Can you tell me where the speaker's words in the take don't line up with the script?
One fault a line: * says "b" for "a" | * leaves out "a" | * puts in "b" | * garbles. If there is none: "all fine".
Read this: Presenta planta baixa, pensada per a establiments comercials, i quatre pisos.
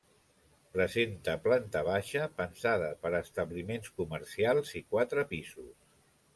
all fine